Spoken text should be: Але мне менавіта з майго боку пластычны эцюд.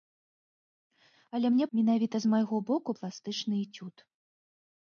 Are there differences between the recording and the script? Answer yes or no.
no